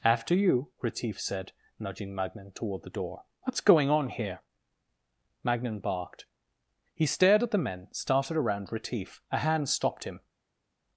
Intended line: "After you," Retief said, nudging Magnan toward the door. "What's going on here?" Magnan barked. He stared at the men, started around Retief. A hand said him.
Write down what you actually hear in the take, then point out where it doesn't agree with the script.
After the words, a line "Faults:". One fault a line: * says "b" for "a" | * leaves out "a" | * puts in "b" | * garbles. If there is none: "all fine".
"After you," Retief said, nudging Magnan toward the door. "What's going on here?" Magnan barked. He stared at the men, started around Retief. A hand stopped him.
Faults:
* says "stopped" for "said"